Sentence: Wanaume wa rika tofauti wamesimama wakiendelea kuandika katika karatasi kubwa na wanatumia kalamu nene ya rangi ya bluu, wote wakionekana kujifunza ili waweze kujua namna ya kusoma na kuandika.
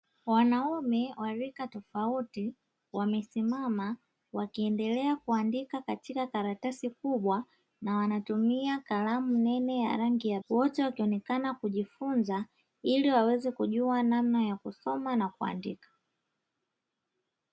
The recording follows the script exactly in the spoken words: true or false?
false